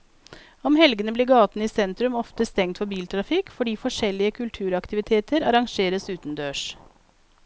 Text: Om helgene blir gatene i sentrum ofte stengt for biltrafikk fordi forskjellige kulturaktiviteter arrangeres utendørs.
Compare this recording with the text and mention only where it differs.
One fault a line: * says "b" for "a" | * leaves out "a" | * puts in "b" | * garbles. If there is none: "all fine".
all fine